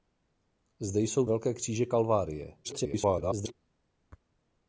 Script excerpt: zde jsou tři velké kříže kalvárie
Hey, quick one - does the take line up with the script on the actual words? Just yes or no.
no